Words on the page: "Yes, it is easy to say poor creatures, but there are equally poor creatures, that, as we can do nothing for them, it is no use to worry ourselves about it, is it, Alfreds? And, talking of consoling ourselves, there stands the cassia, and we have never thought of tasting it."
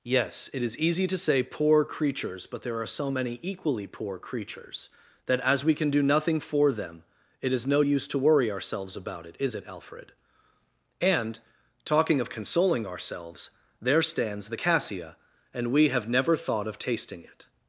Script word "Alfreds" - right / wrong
wrong